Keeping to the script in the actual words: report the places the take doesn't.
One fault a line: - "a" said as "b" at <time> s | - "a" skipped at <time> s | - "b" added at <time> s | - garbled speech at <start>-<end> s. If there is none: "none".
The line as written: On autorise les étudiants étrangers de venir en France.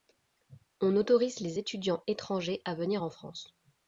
- "de" said as "à" at 2.6 s